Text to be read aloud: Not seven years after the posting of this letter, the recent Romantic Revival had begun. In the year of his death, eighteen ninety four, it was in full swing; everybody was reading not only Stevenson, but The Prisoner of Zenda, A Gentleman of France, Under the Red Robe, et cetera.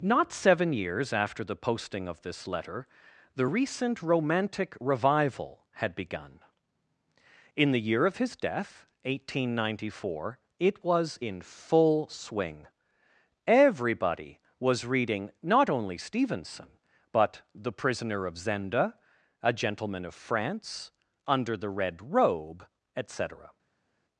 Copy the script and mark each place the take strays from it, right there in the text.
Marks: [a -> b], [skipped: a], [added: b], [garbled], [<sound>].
Not seven years after the posting of this letter, the recent Romantic Revival had begun. In the year of his death, eighteen ninety four, it was in full swing; everybody was reading not only Stevenson, but The Prisoner of Zenda, A Gentleman of France, Under the Red Robe, et cetera.